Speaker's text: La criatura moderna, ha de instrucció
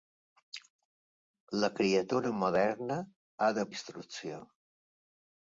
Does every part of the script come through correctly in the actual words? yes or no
yes